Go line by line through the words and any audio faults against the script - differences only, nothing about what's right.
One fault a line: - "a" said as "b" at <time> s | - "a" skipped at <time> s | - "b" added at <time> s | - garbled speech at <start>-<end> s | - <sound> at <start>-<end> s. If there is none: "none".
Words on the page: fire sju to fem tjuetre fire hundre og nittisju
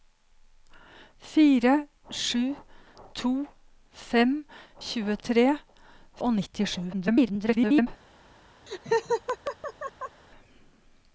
- "fire hundre" skipped at 5.5 s
- garbled speech at 6.9-7.9 s
- laugh at 8.7-10.2 s